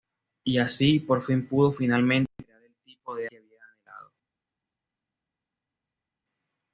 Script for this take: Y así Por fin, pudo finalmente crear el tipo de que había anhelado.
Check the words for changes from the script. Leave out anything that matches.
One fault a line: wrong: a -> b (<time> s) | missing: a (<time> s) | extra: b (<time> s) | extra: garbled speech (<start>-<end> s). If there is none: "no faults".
no faults